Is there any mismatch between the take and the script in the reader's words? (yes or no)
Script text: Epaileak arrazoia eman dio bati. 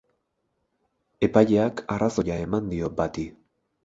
no